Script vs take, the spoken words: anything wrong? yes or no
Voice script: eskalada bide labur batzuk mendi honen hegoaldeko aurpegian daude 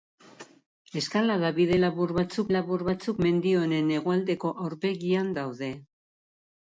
yes